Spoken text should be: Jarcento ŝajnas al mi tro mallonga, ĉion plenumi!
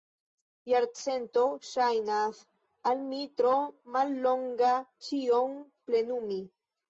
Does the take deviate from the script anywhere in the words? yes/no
no